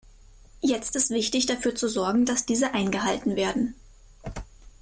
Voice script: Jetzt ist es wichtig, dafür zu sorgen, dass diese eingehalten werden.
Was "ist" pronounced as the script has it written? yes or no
no